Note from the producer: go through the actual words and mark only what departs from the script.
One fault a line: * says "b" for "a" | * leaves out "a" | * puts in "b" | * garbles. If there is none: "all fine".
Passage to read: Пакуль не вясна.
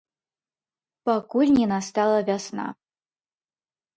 * puts in "настала"